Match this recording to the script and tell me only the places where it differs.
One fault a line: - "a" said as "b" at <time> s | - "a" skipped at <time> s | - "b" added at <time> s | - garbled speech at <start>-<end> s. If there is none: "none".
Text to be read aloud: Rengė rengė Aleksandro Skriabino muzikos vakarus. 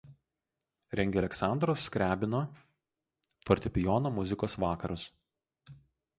- "rengė" skipped at 1.2 s
- "fortepijono" added at 3.5 s